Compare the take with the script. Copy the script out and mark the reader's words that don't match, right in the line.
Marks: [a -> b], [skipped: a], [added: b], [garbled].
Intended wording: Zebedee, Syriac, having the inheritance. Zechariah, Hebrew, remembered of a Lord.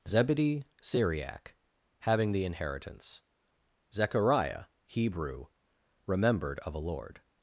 Zebedee, Syriac, having the inheritance. Zechariah, Hebrew, remembered of a Lord.